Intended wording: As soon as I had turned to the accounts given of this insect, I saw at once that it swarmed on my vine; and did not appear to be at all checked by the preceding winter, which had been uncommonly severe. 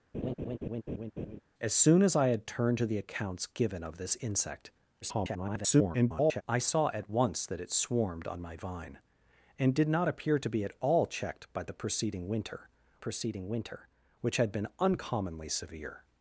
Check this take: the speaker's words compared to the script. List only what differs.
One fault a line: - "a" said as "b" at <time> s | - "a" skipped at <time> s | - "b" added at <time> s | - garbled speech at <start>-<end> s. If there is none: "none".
- garbled speech at 5.0-6.4 s
- "preceding winter" added at 13.0 s